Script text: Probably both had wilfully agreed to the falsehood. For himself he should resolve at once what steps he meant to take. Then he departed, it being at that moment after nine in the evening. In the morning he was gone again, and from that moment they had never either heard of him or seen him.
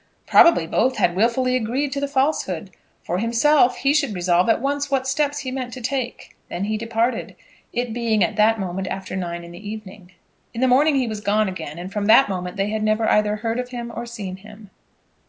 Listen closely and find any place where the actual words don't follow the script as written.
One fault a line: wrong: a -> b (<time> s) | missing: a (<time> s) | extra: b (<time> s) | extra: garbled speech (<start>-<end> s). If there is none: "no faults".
no faults